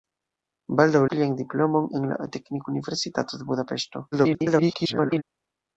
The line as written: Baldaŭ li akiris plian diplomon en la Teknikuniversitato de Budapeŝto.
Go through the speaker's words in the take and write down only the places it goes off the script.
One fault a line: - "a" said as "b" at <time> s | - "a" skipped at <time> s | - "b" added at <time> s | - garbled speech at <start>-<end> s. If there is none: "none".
- "li akiris" skipped at 1.0 s
- garbled speech at 4.1-5.2 s